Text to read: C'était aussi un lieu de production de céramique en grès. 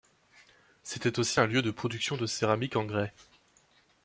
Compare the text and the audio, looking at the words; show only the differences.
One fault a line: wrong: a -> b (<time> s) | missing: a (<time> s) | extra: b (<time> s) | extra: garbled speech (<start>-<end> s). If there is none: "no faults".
no faults